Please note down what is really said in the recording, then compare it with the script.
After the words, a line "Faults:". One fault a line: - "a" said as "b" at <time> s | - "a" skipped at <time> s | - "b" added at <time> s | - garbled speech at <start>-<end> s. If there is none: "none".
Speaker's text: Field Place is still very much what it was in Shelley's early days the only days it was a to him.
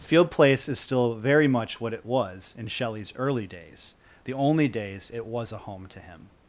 Field Place is still very much what it was in Shelley's early days the only days it was a home to him.
Faults:
- "home" added at 5.6 s